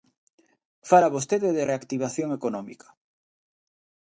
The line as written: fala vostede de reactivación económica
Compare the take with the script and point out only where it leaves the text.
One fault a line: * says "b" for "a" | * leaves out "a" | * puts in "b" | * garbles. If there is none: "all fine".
all fine